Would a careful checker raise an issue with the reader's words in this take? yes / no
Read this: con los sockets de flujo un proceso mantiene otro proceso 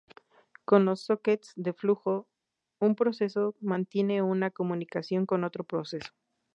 yes